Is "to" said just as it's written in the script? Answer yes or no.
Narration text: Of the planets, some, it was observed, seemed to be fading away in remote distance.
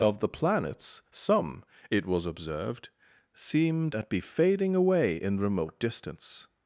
no